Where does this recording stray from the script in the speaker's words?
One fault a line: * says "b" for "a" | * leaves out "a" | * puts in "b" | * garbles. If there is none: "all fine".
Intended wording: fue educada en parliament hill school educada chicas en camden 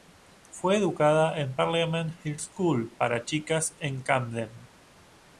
* says "para" for "educada"